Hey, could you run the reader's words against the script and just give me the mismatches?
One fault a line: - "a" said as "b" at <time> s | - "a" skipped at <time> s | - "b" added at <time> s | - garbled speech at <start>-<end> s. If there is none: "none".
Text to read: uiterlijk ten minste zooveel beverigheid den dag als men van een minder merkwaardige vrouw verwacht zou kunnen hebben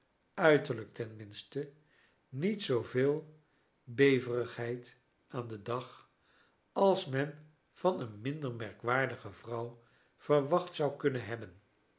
- "niet" added at 2.3 s
- "aan" added at 5.3 s